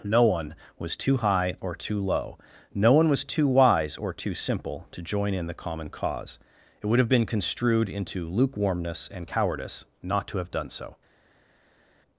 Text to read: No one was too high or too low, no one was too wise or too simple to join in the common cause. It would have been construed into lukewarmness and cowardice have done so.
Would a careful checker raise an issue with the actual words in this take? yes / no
yes